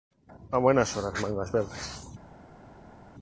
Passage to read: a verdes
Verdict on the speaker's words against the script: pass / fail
fail